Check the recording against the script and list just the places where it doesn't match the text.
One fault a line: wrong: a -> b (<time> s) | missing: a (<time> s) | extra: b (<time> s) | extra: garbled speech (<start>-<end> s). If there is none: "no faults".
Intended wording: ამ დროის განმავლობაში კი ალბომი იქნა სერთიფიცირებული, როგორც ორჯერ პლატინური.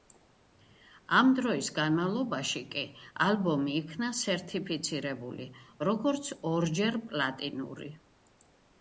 no faults